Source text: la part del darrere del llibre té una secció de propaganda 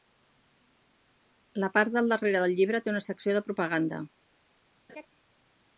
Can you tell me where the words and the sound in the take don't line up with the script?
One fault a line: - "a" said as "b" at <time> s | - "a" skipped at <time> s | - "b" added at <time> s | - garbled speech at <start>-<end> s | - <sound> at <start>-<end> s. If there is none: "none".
- laugh at 4.9-5.1 s